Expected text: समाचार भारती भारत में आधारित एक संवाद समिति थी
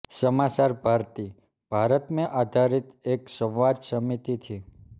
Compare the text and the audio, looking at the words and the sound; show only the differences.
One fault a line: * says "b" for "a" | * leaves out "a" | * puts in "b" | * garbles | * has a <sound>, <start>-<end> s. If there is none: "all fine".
all fine